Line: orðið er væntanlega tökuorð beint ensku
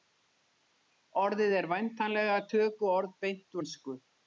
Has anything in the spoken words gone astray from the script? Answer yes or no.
no